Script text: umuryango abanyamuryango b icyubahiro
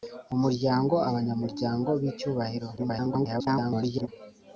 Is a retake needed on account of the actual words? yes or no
yes